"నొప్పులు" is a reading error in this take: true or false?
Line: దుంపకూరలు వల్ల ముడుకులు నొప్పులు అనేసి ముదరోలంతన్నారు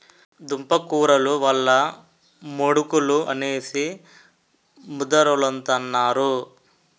true